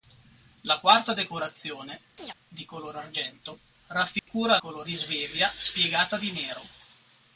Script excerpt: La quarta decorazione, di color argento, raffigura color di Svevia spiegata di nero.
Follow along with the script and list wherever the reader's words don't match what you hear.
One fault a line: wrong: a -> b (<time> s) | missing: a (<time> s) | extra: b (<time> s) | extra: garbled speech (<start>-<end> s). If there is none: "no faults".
no faults